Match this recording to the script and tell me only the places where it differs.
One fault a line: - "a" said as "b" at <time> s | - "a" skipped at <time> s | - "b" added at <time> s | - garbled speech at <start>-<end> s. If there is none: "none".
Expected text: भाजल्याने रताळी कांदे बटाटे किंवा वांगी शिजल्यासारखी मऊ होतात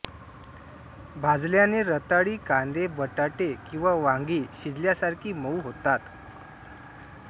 none